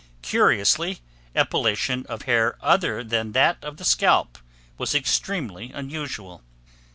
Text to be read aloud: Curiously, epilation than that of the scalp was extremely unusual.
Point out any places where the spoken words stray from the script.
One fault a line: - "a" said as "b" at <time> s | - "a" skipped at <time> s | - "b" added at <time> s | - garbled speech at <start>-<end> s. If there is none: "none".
- "of hair other" added at 2.1 s